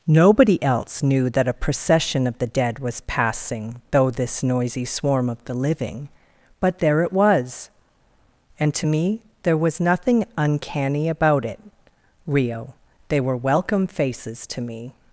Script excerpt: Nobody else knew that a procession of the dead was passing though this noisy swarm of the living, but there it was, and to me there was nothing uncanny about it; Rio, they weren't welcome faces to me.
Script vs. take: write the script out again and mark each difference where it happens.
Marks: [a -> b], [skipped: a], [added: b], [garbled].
Nobody else knew that a procession of the dead was passing though this noisy swarm of the living, but there it was, and to me there was nothing uncanny about it; Rio, they [weren't -> were] welcome faces to me.